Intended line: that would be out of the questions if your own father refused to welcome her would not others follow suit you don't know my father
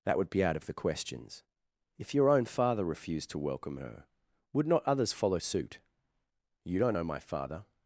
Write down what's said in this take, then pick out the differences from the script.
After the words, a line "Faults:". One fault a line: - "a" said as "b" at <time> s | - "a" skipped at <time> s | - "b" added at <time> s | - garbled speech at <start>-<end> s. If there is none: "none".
that would be out of the questions if your own father refused to welcome her would not others follow suit you don't know my father
Faults:
none